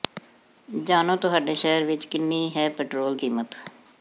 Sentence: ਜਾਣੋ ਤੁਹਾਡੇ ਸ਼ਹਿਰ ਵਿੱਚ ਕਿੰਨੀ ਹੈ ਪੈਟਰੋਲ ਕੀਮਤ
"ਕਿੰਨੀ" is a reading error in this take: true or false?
false